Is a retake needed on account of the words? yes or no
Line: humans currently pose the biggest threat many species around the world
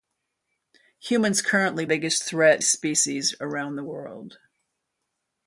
yes